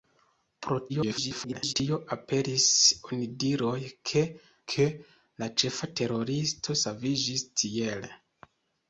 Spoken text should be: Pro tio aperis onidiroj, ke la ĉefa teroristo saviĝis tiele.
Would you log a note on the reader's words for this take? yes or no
yes